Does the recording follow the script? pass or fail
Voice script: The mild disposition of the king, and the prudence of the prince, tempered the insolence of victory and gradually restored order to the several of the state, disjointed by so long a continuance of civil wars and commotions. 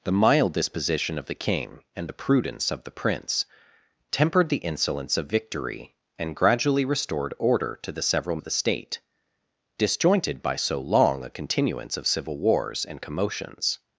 pass